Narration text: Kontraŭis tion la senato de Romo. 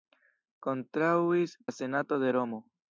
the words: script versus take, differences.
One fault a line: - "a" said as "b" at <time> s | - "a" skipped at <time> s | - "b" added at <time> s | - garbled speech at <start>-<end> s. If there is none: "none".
- "tion" skipped at 1.5 s